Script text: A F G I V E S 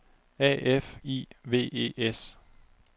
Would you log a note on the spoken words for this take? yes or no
yes